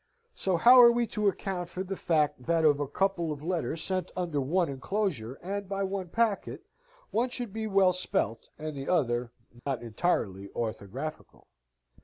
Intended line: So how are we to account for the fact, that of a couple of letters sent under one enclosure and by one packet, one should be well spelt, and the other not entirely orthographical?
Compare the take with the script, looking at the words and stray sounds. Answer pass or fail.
fail